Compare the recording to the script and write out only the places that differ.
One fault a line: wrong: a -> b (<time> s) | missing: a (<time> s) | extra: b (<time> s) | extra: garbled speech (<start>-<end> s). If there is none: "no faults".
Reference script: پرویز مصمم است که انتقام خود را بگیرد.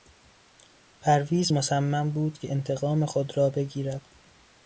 wrong: است -> بود (2.1 s)